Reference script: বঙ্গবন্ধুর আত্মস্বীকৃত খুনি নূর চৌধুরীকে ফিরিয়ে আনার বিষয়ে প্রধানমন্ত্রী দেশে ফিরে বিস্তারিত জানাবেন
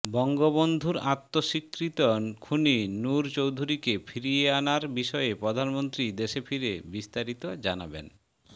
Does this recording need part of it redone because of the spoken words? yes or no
no